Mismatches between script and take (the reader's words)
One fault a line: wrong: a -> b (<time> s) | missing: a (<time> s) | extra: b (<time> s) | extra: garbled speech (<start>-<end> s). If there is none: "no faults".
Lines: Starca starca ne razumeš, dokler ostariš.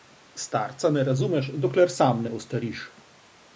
missing: starca (0.9 s)
extra: sam ne (2.0 s)